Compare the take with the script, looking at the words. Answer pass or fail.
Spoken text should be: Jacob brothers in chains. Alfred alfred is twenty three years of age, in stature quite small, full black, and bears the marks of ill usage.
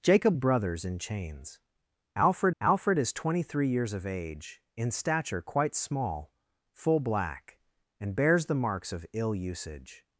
pass